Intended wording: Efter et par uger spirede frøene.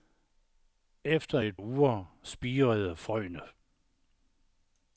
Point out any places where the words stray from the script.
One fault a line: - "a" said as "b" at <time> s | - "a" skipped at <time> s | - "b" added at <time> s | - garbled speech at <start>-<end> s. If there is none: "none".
- "par" skipped at 1.6 s